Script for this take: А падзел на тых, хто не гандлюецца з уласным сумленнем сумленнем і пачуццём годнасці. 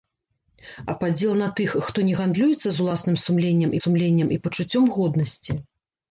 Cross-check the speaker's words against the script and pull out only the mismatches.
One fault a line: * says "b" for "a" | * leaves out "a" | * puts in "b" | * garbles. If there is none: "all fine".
all fine